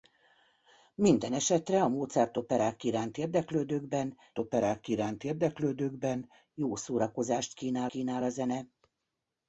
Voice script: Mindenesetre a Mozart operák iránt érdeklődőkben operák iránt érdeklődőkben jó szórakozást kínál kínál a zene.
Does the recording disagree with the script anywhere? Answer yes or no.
no